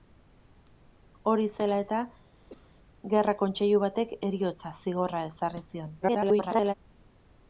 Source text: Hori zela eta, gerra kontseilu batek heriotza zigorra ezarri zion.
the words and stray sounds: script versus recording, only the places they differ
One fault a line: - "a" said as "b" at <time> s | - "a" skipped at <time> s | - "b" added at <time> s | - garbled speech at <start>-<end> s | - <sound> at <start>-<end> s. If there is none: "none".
- cough at 2.5-2.7 s
- garbled speech at 6.0-6.7 s